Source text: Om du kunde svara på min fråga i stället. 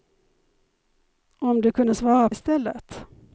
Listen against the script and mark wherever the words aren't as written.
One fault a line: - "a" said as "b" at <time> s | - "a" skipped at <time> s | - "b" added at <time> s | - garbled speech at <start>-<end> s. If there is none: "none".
- "på min fråga" skipped at 2.3 s